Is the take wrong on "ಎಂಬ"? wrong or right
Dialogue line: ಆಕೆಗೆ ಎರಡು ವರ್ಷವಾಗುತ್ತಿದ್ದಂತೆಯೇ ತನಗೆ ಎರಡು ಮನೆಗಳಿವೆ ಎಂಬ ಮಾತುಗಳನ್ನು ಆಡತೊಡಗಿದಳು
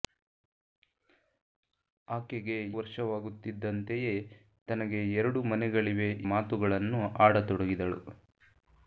wrong